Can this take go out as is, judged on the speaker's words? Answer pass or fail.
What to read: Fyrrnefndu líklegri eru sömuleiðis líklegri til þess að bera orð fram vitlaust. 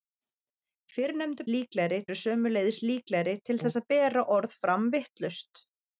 pass